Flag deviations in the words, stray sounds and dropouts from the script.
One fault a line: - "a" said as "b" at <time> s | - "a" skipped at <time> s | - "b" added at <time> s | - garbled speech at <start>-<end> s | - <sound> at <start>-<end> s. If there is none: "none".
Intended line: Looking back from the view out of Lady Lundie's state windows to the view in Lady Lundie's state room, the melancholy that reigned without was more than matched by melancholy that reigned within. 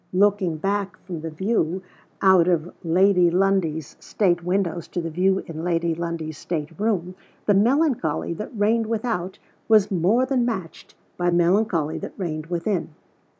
none